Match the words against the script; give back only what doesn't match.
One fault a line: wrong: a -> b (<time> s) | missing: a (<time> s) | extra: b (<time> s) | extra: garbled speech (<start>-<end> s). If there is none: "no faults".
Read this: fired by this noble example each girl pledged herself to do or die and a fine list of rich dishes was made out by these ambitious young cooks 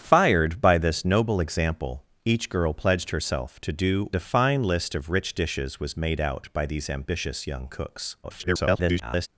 missing: or die and (4.1 s)
extra: garbled speech (8.2-9.3 s)